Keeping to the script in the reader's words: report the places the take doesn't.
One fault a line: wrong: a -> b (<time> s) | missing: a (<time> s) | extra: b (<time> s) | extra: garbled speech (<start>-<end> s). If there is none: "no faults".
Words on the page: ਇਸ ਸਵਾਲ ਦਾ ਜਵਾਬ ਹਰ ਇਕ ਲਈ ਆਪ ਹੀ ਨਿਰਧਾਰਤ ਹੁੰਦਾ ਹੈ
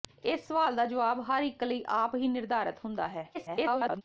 extra: garbled speech (3.3-4.0 s)